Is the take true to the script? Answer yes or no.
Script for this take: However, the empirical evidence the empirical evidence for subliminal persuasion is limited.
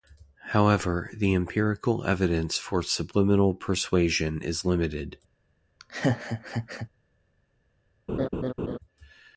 no